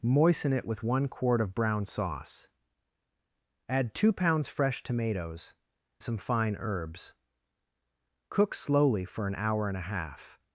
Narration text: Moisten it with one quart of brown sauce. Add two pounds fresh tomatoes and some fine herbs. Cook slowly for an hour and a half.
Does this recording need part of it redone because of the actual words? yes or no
yes